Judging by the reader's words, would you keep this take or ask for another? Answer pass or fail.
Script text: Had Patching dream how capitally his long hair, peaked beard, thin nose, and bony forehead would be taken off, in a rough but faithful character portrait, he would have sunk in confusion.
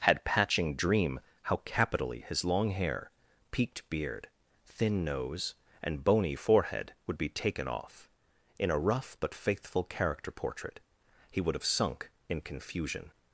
pass